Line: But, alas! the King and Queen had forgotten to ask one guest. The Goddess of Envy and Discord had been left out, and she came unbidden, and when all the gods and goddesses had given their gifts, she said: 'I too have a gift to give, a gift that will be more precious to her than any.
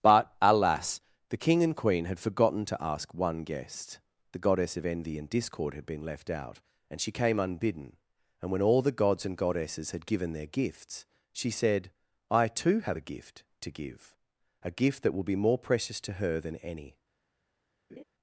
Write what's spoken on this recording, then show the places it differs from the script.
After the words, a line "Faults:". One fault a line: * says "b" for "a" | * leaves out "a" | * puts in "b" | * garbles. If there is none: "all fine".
But, alas! the King and Queen had forgotten to ask one guest. The Goddess of Envy and Discord had been left out, and she came unbidden, and when all the gods and goddesses had given their gifts, she said: 'I too have a gift to give, a gift that will be more precious to her than any.
Faults:
all fine